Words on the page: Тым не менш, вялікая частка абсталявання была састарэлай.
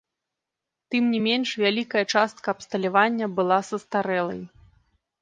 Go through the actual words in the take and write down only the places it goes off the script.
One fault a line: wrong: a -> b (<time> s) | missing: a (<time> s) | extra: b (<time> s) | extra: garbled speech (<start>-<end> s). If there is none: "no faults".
no faults